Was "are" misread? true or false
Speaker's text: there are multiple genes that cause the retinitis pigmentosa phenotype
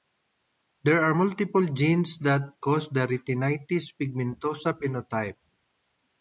false